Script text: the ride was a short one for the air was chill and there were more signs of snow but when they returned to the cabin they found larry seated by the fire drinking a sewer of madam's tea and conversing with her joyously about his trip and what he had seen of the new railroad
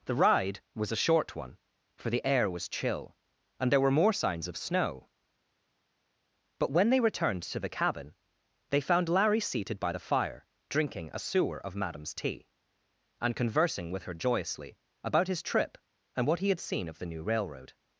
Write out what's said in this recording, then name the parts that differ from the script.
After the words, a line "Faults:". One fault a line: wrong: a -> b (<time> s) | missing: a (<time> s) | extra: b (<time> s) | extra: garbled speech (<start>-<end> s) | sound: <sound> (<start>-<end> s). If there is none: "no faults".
the ride was a short one for the air was chill and there were more signs of snow but when they returned to the cabin they found larry seated by the fire drinking a sewer of madam's tea and conversing with her joyously about his trip and what he had seen of the new railroad
Faults:
no faults